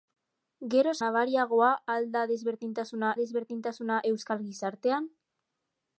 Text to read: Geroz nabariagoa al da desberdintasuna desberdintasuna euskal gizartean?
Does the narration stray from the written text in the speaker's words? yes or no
no